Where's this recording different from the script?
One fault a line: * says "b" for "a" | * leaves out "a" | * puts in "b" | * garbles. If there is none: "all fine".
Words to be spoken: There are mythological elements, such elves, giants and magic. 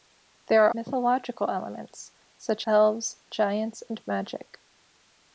all fine